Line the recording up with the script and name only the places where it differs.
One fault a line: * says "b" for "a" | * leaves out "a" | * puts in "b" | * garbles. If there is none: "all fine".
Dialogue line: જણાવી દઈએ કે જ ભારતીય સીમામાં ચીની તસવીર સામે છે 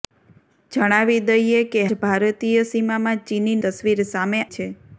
all fine